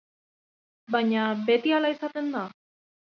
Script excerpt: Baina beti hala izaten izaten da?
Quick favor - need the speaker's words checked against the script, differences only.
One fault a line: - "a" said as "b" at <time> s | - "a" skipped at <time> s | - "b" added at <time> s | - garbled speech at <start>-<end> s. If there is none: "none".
- "izaten" skipped at 2.3 s